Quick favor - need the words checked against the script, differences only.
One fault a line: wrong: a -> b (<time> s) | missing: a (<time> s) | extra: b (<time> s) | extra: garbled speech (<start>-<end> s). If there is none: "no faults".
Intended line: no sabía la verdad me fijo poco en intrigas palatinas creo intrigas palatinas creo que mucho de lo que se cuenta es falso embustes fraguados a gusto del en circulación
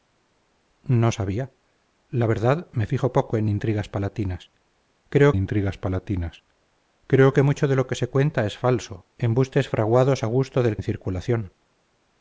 no faults